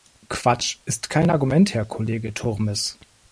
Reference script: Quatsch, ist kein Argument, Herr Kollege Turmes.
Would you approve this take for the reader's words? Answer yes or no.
yes